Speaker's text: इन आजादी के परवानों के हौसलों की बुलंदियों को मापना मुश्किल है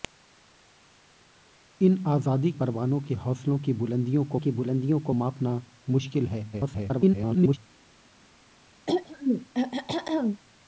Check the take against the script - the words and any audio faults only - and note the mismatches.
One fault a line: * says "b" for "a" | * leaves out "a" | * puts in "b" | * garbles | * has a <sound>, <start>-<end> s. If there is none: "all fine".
* leaves out "के"
* puts in "की बुलंदियों को"
* garbles
* has a throat clearing, 8.9-10.4 s